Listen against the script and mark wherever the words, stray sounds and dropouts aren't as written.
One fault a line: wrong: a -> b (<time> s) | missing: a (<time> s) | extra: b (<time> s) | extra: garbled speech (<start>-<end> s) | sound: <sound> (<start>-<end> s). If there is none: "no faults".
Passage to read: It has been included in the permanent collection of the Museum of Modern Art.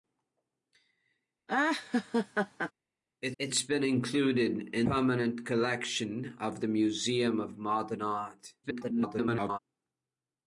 sound: laugh (1.5-2.7 s)
extra: it (3.4 s)
missing: the (4.9 s)
extra: garbled speech (8.6-9.6 s)